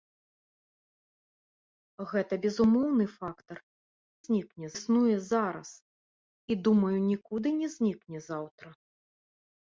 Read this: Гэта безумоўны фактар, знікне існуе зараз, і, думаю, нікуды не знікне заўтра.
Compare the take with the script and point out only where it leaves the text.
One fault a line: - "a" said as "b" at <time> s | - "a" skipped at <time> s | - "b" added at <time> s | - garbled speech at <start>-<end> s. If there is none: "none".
none